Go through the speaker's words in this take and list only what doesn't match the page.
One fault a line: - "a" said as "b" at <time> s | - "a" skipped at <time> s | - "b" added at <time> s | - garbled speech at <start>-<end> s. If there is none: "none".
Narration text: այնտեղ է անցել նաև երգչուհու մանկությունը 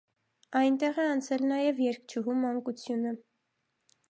none